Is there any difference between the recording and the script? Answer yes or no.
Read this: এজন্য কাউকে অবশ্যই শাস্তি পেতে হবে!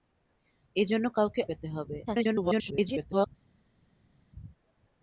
yes